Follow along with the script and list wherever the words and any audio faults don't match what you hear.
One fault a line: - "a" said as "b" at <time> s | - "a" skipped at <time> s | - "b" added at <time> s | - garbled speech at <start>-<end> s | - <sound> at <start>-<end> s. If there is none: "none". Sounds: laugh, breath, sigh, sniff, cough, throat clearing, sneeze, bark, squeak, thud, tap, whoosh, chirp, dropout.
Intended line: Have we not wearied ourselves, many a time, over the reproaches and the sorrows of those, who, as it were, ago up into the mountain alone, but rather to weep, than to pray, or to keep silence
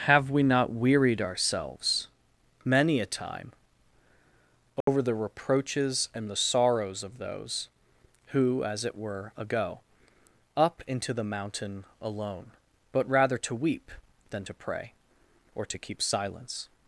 - dropout at 4.8-4.9 s